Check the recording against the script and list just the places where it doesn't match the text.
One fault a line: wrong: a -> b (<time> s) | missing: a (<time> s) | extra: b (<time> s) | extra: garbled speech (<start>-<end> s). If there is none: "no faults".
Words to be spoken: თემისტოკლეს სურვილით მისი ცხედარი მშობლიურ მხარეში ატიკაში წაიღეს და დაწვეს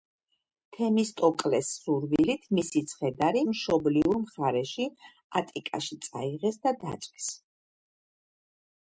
no faults